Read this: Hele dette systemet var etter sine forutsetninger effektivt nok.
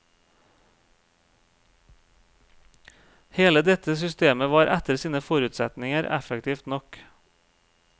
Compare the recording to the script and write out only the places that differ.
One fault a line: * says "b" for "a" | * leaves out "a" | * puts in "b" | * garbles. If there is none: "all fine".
all fine